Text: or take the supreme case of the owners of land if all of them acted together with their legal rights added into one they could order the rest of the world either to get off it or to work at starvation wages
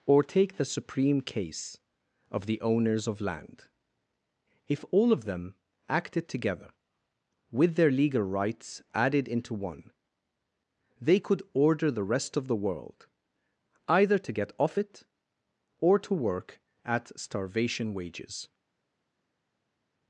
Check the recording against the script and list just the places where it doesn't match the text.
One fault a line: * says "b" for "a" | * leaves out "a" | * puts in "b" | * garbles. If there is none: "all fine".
all fine